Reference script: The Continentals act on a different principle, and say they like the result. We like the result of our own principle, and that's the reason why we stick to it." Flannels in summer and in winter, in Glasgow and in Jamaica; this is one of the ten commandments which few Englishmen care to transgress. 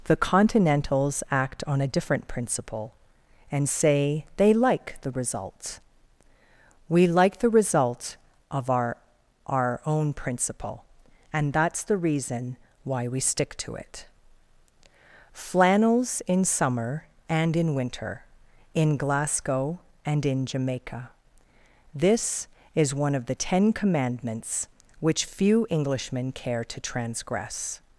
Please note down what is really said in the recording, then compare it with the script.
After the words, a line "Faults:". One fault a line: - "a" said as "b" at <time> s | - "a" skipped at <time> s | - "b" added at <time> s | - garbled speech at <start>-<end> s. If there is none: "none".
The Continentals act on a different principle, and say they like the result. We like the result of our our own principle, and that's the reason why we stick to it." Flannels in summer and in winter, in Glasgow and in Jamaica; this is one of the ten commandments which few Englishmen care to transgress.
Faults:
- "our" added at 9.4 s